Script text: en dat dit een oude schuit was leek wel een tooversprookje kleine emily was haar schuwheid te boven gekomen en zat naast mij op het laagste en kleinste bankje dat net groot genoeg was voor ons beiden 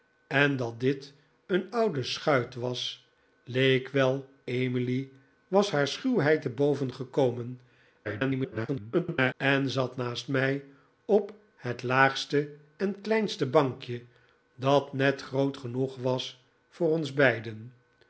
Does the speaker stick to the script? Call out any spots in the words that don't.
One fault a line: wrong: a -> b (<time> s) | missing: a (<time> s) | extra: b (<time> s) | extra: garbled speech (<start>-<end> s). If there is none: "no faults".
missing: een tooversprookje kleine (4.3 s)
extra: garbled speech (8.0-9.3 s)